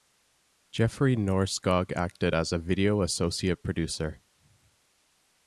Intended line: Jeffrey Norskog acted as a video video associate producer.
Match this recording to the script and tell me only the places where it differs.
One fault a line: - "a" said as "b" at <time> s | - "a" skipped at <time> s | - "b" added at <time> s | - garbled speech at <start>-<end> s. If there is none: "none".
- "video" skipped at 3.0 s